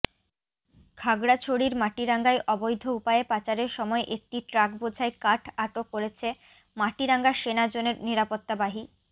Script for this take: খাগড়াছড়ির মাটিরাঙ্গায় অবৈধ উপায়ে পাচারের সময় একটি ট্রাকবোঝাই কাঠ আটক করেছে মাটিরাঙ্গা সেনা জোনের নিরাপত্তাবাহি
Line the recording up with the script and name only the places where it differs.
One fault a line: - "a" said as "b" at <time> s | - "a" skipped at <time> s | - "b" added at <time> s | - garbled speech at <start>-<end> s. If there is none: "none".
none